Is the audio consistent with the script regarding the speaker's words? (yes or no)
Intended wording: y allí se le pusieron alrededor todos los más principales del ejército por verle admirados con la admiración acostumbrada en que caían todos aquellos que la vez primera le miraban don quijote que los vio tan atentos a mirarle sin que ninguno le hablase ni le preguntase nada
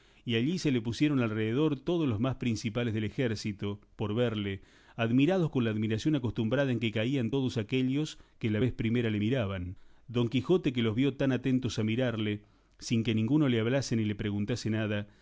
yes